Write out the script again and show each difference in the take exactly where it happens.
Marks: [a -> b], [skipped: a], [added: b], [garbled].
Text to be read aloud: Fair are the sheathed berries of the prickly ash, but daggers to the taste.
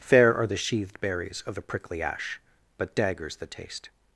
Fair are the sheathed berries of the prickly ash, but daggers [skipped: to] the taste.